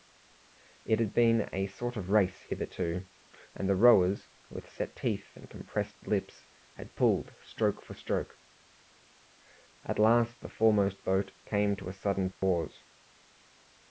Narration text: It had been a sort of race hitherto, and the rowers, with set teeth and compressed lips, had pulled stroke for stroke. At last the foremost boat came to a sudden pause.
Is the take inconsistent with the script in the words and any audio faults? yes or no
yes